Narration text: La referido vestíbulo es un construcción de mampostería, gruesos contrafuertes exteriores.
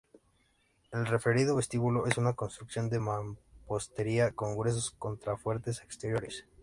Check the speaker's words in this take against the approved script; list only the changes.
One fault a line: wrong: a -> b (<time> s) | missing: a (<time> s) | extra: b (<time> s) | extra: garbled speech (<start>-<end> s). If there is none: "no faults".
wrong: La -> El (0.9 s)
wrong: un -> una (2.2 s)
extra: con (4.3 s)